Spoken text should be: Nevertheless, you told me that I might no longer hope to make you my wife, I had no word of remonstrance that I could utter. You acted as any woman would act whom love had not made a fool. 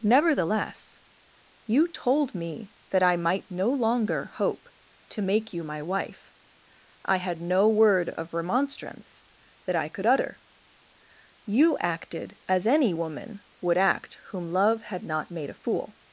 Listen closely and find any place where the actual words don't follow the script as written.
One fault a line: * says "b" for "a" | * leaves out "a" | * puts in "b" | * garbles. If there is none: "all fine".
all fine